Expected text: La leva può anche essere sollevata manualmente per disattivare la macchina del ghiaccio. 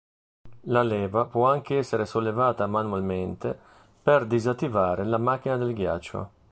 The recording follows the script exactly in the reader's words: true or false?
true